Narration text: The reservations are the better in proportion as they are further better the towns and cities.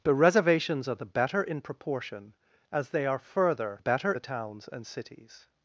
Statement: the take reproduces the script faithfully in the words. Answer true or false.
true